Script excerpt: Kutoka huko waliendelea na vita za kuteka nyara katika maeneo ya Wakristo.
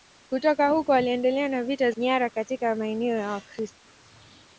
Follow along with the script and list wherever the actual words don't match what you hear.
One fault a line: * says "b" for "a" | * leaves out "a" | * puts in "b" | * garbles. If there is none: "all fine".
* leaves out "za kuteka"